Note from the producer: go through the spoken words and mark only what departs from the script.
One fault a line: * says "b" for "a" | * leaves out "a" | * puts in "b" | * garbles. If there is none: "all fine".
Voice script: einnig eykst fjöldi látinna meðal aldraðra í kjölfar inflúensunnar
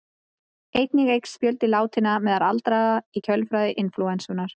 all fine